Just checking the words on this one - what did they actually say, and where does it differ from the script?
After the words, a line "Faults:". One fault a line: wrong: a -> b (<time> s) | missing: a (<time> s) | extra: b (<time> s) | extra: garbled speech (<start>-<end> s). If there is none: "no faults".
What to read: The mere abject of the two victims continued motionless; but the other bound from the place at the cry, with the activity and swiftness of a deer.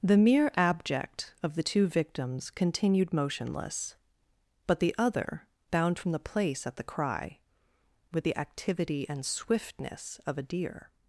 The mere abject of the two victims continued motionless; but the other bound from the place at the cry, with the activity and swiftness of a deer.
Faults:
no faults